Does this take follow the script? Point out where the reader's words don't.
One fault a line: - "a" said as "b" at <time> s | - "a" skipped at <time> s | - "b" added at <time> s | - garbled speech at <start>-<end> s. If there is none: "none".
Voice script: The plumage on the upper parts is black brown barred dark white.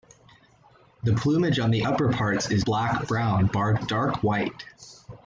none